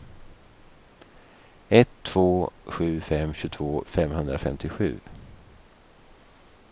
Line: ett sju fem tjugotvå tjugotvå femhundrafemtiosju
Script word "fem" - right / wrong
right